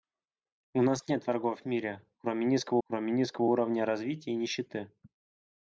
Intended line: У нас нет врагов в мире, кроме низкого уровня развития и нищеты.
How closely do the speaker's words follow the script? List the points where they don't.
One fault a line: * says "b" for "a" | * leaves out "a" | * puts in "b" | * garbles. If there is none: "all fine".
* puts in "кроме низкого"